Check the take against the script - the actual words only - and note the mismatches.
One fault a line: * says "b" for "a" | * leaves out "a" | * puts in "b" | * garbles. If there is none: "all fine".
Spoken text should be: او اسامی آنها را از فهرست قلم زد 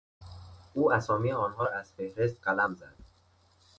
all fine